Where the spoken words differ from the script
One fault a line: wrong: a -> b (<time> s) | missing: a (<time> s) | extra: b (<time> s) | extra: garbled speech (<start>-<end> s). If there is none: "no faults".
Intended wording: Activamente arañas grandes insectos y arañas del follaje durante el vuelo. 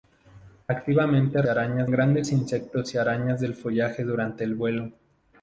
no faults